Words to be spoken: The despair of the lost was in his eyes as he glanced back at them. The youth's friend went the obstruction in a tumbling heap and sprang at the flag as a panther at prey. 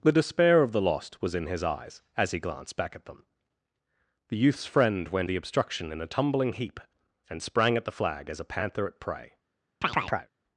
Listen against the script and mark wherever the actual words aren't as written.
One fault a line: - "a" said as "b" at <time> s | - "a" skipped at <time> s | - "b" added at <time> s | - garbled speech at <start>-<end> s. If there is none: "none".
none